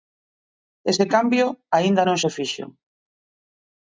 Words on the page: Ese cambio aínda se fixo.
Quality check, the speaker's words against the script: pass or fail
fail